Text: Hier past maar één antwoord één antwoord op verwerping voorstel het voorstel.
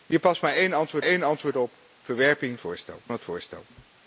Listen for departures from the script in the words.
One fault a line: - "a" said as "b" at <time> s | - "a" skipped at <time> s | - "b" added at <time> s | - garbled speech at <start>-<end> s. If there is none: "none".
none